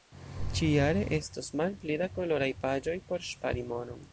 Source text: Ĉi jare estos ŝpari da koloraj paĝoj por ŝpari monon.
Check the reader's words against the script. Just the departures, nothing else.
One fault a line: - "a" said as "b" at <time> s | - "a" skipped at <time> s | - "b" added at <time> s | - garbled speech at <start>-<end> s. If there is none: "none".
- "ŝpari" said as "malpli" at 1.6 s